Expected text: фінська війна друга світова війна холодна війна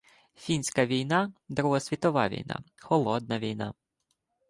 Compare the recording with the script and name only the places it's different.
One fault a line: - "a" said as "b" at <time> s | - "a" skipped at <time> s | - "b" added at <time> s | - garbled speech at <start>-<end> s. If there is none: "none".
none